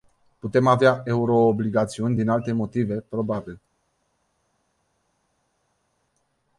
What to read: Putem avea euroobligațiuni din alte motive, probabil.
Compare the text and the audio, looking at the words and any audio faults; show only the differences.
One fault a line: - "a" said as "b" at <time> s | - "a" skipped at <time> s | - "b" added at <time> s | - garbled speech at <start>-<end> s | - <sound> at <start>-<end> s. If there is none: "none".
none